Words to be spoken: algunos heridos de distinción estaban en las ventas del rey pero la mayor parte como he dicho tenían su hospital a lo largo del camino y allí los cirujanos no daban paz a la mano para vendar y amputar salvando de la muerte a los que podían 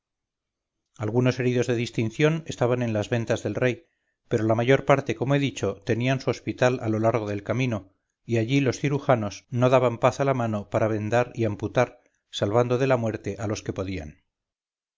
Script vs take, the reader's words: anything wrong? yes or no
no